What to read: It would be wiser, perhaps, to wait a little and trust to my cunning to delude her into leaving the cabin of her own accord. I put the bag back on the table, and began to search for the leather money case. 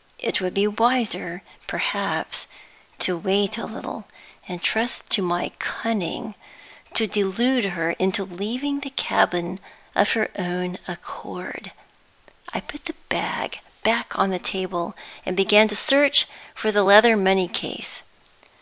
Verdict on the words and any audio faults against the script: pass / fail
pass